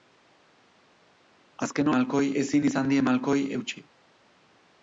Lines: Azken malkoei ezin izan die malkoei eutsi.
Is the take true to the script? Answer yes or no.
yes